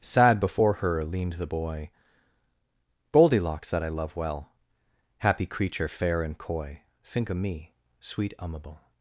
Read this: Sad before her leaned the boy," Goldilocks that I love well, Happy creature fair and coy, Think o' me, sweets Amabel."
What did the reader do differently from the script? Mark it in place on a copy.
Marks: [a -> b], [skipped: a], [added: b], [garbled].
Sad before her leaned the boy," Goldilocks that I love well, Happy creature fair and coy, Think o' me, [sweets -> sweet] Amabel."